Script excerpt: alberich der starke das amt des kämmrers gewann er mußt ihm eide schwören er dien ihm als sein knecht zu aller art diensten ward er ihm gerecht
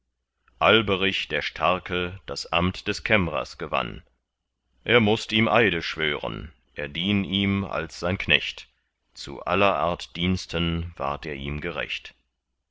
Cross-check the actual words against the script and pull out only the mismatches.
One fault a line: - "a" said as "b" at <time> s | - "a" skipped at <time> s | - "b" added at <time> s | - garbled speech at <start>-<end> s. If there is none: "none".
none